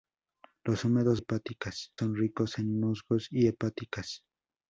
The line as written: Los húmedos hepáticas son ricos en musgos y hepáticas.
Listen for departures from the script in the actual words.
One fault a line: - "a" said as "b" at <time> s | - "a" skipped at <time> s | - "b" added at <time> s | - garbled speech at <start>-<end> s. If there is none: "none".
none